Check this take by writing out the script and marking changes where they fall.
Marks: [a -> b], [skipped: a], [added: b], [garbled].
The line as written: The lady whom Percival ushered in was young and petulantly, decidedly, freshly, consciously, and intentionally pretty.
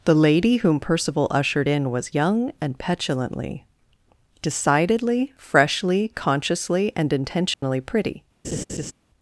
The lady whom Percival ushered in was young and petulantly, decidedly, freshly, consciously, and intentionally pretty.